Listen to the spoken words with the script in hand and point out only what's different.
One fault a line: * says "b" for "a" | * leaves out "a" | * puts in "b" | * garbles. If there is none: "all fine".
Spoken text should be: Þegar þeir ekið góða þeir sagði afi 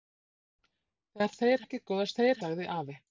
all fine